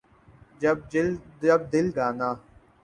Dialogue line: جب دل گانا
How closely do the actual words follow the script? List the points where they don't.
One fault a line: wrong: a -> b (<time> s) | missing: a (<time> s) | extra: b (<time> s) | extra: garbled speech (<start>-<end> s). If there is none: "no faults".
no faults